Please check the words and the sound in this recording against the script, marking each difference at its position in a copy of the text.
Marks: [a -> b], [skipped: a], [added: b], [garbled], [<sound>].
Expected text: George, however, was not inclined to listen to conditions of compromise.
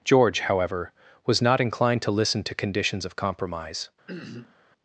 George, however, was not inclined to listen to conditions of compromise. [throat clearing]